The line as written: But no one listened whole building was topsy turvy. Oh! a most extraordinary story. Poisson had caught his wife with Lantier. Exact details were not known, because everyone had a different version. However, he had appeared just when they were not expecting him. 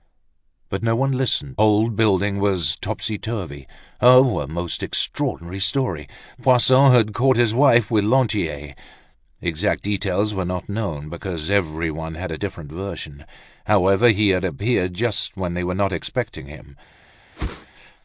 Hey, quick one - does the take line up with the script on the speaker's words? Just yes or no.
yes